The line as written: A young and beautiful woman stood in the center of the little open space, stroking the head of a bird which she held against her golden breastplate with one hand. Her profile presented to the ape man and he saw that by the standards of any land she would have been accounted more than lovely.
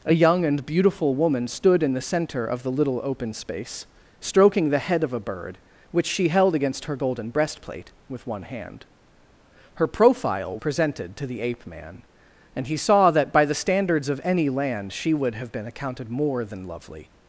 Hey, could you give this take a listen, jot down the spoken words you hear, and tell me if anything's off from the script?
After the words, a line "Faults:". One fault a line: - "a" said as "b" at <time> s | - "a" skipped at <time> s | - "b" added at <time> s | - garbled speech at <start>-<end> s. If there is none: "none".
A young and beautiful woman stood in the center of the little open space, stroking the head of a bird which she held against her golden breastplate with one hand. Her profile presented to the ape man and he saw that by the standards of any land she would have been accounted more than lovely.
Faults:
none